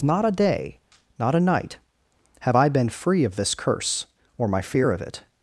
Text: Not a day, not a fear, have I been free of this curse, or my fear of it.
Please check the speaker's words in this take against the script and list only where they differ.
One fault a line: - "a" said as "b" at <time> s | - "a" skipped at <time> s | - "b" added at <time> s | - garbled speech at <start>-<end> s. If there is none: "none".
- "fear" said as "night" at 1.4 s